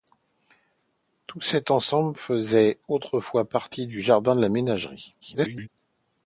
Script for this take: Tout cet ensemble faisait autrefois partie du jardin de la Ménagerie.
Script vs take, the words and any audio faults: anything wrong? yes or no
yes